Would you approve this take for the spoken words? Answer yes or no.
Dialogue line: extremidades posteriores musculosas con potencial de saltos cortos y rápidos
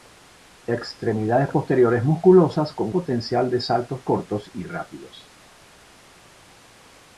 yes